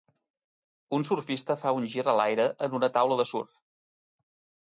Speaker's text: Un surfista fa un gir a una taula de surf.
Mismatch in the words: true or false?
true